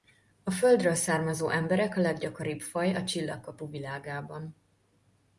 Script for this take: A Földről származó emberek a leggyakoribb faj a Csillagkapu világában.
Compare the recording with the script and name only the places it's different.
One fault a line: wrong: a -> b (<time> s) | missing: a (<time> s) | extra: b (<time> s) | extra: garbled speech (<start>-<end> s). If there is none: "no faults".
no faults